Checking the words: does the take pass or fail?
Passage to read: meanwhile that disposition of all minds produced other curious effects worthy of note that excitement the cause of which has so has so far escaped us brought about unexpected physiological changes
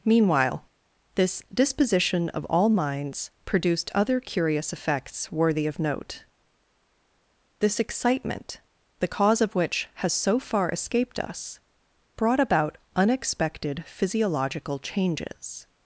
fail